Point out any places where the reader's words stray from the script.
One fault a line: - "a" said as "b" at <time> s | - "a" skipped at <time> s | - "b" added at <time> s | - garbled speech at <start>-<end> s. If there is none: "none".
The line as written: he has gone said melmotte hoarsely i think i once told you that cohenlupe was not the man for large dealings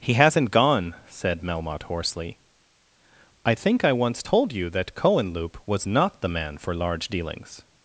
- "has" said as "hasn't" at 0.1 s